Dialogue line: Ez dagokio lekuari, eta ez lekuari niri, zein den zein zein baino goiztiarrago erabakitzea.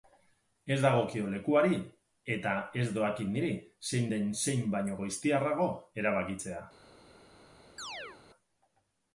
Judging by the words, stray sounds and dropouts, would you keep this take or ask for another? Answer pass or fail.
fail